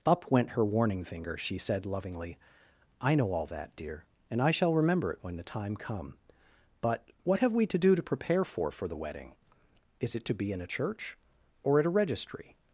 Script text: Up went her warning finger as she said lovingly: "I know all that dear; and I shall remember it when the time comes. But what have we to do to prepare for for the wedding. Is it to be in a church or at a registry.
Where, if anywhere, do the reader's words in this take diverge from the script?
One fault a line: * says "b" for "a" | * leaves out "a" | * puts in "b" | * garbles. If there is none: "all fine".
* leaves out "as"
* says "come" for "comes"